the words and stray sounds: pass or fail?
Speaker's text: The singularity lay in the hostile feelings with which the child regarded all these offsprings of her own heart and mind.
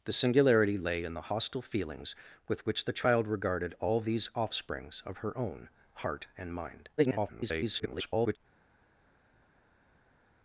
fail